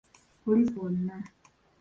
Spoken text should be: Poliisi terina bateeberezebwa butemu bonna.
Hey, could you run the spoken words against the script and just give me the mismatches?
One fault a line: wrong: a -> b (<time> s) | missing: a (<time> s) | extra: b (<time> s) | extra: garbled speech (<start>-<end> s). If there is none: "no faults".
missing: terina bateeberezebwa butemu (0.8 s)